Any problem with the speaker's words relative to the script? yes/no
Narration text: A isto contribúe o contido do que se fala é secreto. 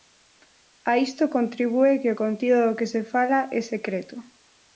yes